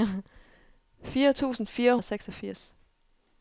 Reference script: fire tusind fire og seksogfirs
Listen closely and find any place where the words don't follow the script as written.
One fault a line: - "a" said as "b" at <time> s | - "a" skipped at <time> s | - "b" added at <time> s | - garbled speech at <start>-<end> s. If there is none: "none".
none